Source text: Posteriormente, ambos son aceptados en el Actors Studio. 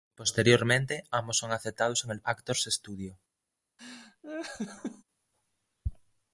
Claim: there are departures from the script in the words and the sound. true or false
true